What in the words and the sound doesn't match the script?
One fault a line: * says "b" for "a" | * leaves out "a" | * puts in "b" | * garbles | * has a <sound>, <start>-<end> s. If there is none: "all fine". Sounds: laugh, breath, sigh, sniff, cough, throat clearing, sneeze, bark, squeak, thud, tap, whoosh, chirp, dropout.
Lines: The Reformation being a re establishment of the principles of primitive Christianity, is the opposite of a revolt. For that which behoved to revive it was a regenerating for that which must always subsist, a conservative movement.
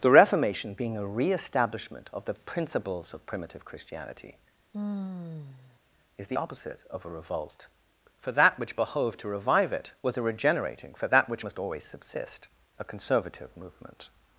* has a sigh, 4.7-5.8 s